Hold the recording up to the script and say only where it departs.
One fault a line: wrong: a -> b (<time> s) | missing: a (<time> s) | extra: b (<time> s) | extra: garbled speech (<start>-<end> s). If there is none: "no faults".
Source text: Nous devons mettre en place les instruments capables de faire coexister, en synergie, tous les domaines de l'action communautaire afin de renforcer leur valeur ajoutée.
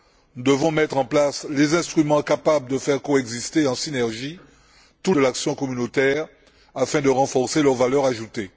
missing: les domaines (5.1 s)